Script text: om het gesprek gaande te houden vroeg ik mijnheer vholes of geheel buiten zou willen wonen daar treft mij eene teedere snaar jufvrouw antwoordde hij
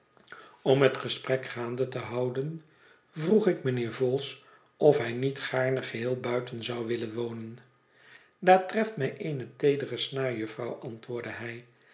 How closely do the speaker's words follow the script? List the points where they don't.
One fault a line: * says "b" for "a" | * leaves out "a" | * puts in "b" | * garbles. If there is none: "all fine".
* puts in "hij niet gaarne"